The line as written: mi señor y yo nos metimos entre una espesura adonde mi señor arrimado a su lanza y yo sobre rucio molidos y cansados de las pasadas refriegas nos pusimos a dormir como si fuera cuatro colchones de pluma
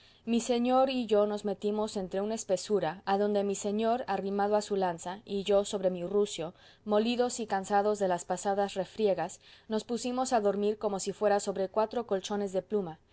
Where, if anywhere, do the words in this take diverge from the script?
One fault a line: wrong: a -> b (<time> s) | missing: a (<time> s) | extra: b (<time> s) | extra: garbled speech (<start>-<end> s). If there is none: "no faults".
extra: mi (5.9 s)
extra: sobre (11.4 s)